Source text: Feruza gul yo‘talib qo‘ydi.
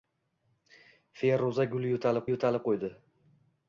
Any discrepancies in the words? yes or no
yes